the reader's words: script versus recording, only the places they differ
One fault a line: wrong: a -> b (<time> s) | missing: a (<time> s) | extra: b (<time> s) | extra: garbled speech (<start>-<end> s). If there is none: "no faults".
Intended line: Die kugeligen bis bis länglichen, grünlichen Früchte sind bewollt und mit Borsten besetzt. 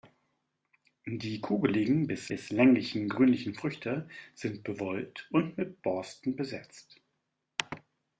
no faults